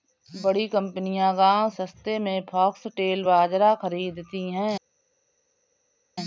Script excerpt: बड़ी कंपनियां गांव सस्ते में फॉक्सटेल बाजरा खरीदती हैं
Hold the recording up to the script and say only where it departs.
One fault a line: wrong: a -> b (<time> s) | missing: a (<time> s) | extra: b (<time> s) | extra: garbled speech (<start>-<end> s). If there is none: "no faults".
no faults